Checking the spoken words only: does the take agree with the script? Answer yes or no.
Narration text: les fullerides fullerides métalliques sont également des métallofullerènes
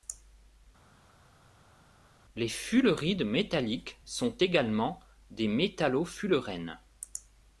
no